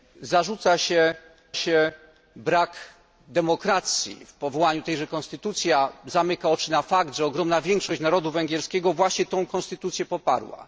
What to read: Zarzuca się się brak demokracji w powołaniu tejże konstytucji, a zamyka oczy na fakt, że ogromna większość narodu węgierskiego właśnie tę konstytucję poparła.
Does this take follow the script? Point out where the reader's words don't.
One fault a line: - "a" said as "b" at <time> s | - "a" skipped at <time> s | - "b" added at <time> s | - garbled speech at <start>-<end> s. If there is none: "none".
none